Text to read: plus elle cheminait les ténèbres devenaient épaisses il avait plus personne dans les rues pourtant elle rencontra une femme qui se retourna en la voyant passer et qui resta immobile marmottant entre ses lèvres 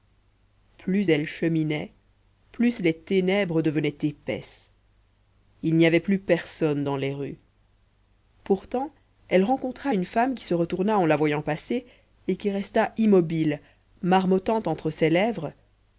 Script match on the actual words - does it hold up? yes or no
no